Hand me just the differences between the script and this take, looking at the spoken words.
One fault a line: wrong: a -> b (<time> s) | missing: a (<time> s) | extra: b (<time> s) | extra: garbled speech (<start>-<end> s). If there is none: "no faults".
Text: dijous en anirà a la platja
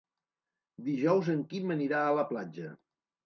extra: quim (1.5 s)